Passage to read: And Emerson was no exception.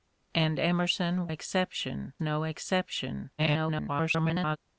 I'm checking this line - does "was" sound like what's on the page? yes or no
no